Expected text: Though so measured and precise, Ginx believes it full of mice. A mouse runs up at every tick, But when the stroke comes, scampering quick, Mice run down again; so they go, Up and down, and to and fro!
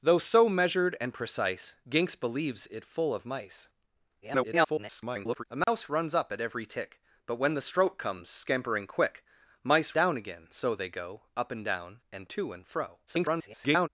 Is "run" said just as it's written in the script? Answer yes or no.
no